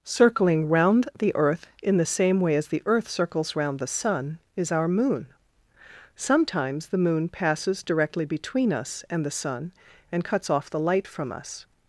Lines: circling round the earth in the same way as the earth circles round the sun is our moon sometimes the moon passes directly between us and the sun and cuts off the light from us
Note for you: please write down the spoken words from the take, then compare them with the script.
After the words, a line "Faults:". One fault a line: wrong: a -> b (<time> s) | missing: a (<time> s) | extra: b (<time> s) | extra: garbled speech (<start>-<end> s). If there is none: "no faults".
circling round the earth in the same way as the earth circles round the sun is our moon sometimes the moon passes directly between us and the sun and cuts off the light from us
Faults:
no faults